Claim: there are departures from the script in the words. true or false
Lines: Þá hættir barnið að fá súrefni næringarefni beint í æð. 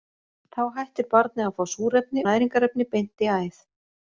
false